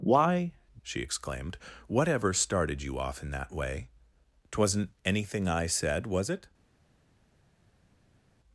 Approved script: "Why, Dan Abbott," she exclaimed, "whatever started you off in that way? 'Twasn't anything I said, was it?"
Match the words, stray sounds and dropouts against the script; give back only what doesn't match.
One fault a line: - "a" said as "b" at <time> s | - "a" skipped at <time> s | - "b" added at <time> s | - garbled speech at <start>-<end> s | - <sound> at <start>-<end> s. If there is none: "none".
- "Dan Abbott" skipped at 0.5 s